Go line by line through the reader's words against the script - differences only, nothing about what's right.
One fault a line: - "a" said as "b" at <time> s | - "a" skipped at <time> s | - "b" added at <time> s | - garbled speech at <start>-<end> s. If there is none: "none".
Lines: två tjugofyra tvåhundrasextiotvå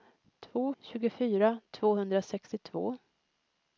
none